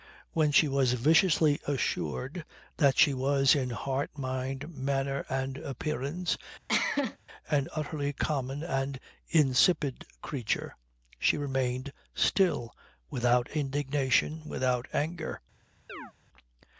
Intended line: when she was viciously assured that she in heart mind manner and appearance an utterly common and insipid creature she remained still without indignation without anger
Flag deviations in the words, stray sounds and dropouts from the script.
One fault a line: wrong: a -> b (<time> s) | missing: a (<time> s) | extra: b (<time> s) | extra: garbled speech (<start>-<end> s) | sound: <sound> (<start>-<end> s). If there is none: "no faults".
extra: was (3.1 s)
sound: cough (6.7-7.2 s)
sound: chirp (15.9-16.1 s)